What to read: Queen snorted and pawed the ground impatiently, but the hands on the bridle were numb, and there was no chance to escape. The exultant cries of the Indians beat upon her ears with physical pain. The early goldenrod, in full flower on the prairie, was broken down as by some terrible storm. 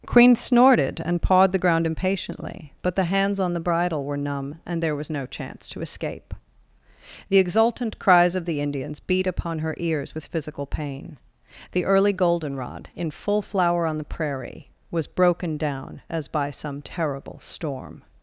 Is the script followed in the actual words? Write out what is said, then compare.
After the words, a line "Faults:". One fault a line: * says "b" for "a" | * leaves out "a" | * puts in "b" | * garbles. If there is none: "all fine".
Queen snorted and pawed the ground impatiently, but the hands on the bridle were numb, and there was no chance to escape. The exultant cries of the Indians beat upon her ears with physical pain. The early goldenrod, in full flower on the prairie, was broken down as by some terrible storm.
Faults:
all fine